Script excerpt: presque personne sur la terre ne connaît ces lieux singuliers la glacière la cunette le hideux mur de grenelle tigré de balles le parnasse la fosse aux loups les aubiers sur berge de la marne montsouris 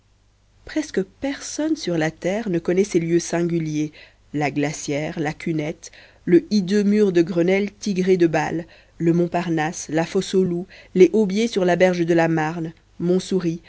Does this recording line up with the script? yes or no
no